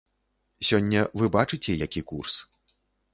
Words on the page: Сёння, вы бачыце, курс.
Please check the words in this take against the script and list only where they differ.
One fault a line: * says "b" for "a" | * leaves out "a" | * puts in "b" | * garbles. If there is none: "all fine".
* puts in "які"